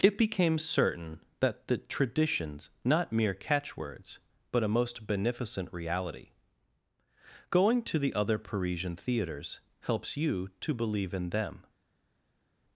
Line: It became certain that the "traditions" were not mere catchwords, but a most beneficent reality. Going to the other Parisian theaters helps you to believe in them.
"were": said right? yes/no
no